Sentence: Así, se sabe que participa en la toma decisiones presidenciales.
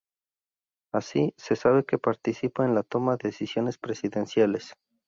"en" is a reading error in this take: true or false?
false